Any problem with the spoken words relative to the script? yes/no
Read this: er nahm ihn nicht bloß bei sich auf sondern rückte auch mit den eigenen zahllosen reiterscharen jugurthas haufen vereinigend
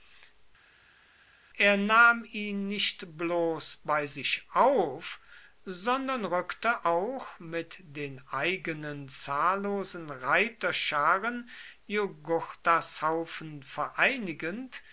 no